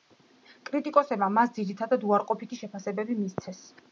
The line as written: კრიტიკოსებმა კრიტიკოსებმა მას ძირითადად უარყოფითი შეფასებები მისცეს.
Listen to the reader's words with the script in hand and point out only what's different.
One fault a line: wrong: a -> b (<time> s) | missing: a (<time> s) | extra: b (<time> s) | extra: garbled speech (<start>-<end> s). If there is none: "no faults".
missing: კრიტიკოსებმა (1.3 s)